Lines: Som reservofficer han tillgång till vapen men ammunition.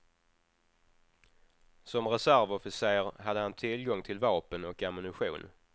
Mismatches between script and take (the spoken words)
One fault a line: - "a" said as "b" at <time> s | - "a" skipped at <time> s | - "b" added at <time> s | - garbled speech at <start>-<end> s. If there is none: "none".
- "hade" added at 3.2 s
- "men" said as "och" at 4.7 s